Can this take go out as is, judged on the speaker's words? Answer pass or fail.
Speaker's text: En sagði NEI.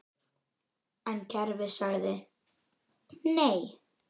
fail